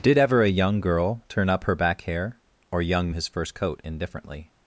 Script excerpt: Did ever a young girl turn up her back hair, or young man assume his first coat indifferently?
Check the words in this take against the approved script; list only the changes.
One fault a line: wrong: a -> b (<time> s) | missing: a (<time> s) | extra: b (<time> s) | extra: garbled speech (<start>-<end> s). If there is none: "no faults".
missing: man assume (3.1 s)